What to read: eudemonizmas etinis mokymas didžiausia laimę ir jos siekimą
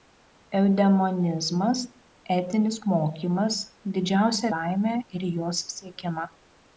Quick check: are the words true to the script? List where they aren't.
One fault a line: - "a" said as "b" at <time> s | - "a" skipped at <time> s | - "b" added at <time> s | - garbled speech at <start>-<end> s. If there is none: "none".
none